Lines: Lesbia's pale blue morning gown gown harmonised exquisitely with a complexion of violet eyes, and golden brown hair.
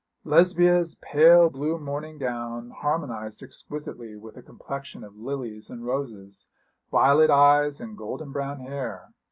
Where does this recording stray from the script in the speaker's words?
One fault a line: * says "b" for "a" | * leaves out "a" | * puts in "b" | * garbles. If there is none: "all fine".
* leaves out "gown"
* puts in "lilies and roses"